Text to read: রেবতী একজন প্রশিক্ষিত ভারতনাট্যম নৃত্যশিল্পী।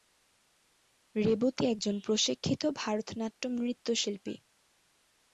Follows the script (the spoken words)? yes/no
yes